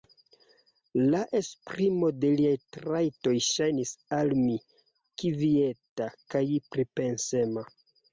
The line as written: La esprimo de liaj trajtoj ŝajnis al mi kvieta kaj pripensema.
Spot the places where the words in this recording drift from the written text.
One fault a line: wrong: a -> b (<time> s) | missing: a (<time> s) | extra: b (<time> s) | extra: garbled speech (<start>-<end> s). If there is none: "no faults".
no faults